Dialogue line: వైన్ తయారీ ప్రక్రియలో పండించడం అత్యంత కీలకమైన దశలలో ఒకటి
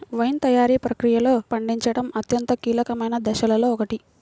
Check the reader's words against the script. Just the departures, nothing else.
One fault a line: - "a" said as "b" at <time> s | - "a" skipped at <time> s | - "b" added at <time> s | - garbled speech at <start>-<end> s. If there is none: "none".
none